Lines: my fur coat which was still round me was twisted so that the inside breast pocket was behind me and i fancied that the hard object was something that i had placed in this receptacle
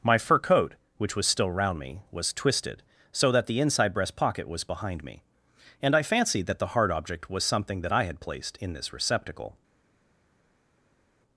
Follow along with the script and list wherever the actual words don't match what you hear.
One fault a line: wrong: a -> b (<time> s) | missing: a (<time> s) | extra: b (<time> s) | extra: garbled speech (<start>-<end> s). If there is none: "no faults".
no faults